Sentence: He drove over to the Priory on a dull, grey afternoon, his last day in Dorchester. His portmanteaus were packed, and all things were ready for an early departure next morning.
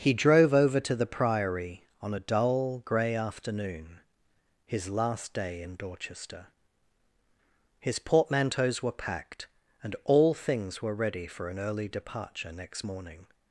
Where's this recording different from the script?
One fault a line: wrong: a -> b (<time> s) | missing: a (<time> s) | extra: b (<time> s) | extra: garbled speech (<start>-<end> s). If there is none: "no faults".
no faults